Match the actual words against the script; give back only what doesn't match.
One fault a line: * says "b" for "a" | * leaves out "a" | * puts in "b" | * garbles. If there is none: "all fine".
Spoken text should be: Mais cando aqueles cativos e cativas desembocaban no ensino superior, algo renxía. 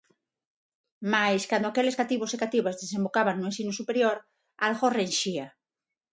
all fine